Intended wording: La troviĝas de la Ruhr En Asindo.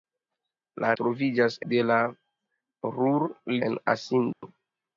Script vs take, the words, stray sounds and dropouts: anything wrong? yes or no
yes